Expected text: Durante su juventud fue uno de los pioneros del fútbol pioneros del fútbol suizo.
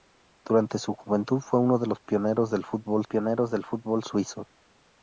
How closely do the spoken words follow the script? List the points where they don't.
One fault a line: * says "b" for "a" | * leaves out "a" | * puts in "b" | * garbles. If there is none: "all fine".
all fine